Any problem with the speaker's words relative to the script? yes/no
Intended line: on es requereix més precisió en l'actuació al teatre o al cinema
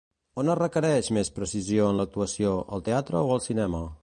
no